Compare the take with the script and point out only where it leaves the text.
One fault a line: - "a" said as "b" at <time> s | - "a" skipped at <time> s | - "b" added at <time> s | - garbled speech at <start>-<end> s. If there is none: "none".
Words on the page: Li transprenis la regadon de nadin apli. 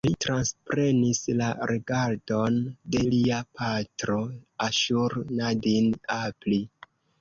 - "lia patro Aŝur" added at 3.1 s